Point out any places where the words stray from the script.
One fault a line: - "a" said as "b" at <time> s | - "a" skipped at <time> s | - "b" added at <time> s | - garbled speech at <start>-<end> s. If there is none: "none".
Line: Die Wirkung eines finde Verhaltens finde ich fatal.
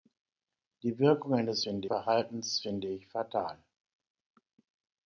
none